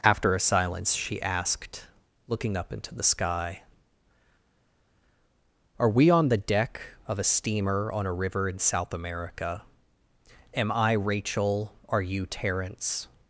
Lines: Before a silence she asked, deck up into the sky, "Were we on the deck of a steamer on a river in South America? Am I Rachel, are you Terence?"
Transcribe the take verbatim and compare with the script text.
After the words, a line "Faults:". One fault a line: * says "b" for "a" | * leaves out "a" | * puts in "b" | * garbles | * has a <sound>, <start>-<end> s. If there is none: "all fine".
After a silence she asked, looking up into the sky, "Are we on the deck of a steamer on a river in South America? Am I Rachel, are you Terence?"
Faults:
* says "After" for "Before"
* says "looking" for "deck"
* says "Are" for "Were"